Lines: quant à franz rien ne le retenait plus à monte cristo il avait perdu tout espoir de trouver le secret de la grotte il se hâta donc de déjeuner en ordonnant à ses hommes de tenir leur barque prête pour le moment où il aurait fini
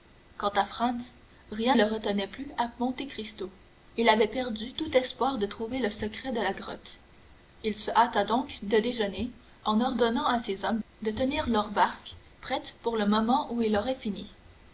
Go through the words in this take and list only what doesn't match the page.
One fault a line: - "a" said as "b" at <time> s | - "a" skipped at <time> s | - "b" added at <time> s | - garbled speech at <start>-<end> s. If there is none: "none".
- "ne" skipped at 1.8 s